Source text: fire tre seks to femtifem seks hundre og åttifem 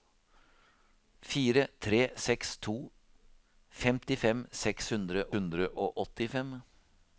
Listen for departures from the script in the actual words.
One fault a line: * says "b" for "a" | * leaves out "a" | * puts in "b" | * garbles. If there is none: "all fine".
* puts in "hundre"